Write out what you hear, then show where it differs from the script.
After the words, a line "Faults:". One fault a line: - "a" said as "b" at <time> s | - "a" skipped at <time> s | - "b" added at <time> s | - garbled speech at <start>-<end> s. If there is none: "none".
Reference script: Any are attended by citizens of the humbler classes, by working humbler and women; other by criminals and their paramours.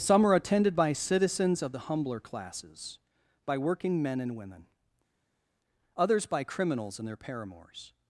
Some are attended by citizens of the humbler classes, by working men and women; others by criminals and their paramours.
Faults:
- "Any" said as "Some" at 0.0 s
- "humbler" said as "men" at 4.0 s
- "other" said as "others" at 6.0 s